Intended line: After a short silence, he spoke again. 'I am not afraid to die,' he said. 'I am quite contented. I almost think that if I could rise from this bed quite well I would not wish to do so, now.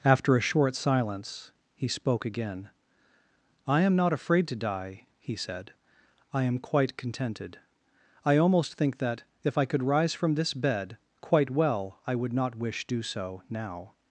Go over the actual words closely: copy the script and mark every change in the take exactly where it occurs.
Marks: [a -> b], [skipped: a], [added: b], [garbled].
After a short silence, he spoke again. 'I am not afraid to die,' he said. 'I am quite contented. I almost think that if I could rise from this bed quite well I would not wish [skipped: to] do so, now.